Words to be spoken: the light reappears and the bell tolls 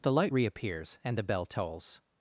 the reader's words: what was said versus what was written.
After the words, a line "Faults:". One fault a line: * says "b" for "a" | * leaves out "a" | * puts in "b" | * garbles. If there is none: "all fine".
the light reappears and the bell tolls
Faults:
all fine